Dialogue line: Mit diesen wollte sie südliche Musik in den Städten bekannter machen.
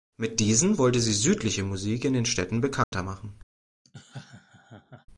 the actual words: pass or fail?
pass